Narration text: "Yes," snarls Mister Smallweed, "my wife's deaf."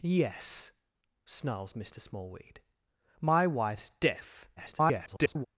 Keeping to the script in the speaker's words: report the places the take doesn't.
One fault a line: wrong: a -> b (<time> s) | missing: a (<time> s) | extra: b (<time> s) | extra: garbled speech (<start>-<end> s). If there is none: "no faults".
extra: garbled speech (4.6-5.5 s)